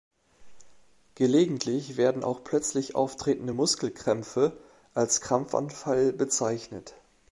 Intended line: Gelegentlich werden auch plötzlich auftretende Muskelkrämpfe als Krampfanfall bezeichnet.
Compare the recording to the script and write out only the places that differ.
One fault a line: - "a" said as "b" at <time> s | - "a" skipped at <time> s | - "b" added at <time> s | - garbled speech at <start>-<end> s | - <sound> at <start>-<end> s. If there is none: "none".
none